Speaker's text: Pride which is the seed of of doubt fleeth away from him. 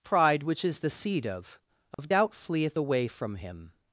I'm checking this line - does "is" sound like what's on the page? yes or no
yes